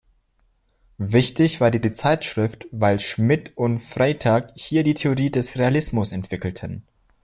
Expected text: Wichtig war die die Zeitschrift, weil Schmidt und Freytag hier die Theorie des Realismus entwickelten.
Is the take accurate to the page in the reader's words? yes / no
yes